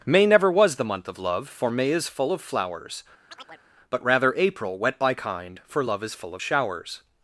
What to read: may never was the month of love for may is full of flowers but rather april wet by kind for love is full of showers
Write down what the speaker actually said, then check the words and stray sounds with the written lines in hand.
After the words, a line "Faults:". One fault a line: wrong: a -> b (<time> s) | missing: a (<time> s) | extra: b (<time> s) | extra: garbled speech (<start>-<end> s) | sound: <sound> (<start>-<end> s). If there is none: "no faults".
may never was the month of love for may is full of flowers but rather april wet by kind for love is full of showers
Faults:
sound: chirp (3.3-3.6 s)